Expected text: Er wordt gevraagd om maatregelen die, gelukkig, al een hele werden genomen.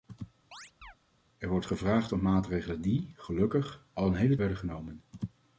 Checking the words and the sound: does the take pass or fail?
fail